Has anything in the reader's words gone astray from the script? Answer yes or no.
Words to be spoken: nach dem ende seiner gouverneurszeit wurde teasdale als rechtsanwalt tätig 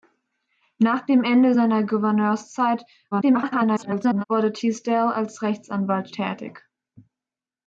yes